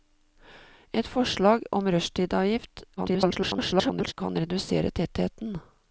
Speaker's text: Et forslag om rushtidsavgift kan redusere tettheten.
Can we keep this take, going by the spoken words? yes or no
no